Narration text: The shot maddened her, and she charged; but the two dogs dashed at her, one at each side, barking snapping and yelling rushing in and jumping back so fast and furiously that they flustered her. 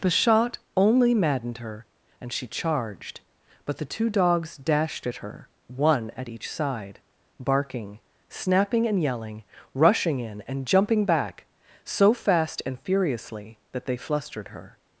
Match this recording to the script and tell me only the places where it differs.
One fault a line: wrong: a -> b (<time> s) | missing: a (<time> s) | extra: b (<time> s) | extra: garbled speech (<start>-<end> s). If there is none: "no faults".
extra: only (0.8 s)